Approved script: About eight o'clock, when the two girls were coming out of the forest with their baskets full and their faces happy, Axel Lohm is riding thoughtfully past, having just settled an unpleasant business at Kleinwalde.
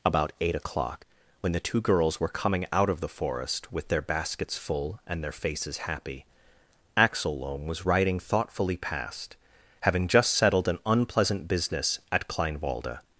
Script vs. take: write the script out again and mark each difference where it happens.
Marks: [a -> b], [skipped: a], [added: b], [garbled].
About eight o'clock, when the two girls were coming out of the forest with their baskets full and their faces happy, Axel Lohm [is -> was] riding thoughtfully past, having just settled an unpleasant business at Kleinwalde.